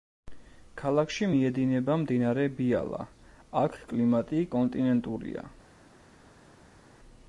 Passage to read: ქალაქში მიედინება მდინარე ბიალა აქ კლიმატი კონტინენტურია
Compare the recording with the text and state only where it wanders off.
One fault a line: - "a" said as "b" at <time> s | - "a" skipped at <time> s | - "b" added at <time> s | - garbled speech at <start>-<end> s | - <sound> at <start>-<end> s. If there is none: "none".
none